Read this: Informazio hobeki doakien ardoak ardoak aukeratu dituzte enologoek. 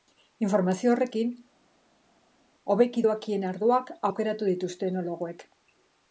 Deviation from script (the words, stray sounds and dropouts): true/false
true